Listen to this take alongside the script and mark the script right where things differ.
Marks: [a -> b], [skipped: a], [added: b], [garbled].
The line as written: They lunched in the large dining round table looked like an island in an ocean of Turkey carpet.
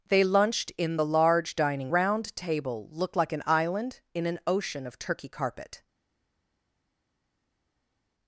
They lunched in the large dining round table looked like an island in an ocean of Turkey carpet.